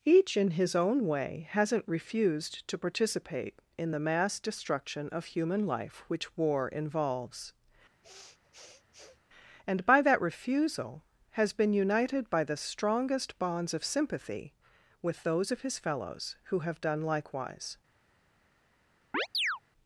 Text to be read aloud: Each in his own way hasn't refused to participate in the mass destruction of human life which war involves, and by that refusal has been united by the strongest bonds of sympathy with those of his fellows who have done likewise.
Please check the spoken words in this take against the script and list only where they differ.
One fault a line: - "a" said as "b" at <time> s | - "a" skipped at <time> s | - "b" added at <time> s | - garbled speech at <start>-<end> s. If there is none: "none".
none